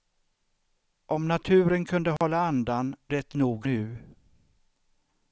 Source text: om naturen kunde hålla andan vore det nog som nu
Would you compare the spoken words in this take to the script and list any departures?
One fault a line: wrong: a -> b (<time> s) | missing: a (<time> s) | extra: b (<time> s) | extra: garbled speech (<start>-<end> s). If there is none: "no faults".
missing: vore (3.0 s)
missing: som (3.7 s)